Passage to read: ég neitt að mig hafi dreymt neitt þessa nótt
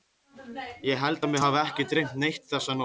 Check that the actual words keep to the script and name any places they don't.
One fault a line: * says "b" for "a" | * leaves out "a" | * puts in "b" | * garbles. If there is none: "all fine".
* says "held" for "neitt"
* puts in "ekki"